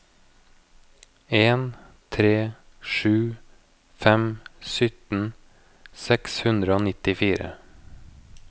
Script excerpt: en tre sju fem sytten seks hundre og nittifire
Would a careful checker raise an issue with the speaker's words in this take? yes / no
no